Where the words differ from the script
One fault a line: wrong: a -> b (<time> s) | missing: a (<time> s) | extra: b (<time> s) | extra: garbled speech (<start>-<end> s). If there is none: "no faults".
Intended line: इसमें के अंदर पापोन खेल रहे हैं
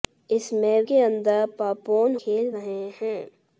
no faults